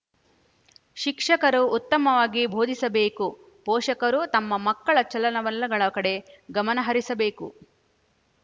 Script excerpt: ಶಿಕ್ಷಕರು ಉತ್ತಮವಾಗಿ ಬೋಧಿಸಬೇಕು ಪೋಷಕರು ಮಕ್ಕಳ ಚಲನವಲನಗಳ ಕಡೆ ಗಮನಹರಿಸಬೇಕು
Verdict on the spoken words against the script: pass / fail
fail